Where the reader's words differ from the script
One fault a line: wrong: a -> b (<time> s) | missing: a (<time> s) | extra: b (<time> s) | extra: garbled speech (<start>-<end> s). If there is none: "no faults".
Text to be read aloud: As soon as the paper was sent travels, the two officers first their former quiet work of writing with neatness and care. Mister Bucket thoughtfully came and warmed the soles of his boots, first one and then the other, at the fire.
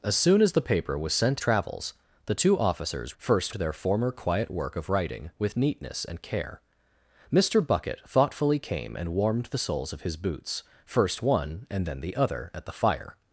no faults